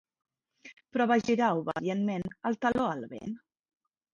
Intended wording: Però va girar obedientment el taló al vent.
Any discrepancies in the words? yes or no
no